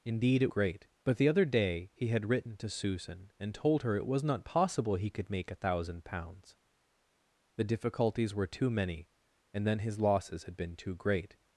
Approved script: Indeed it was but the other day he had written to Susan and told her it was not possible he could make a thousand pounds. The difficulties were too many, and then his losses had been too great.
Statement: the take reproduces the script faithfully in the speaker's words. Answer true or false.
false